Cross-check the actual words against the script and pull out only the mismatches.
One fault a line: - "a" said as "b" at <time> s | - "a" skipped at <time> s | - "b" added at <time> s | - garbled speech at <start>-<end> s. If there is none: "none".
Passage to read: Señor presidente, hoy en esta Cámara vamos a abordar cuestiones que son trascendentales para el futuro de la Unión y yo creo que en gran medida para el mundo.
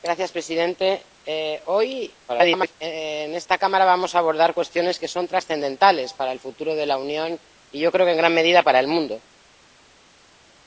- garbled speech at 2.3-2.7 s